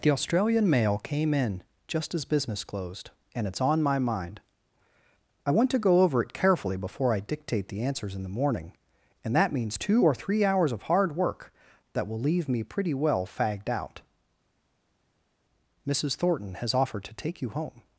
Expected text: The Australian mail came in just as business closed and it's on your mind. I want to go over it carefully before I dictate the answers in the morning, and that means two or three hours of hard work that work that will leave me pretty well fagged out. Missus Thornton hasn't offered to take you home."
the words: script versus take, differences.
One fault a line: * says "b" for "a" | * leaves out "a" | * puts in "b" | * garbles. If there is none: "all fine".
* says "my" for "your"
* leaves out "work that"
* says "has" for "hasn't"